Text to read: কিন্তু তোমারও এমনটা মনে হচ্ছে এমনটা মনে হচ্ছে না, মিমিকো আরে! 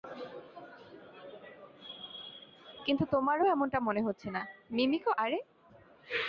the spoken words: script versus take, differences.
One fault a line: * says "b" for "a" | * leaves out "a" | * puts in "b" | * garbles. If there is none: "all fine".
* leaves out "এমনটা মনে হচ্ছে"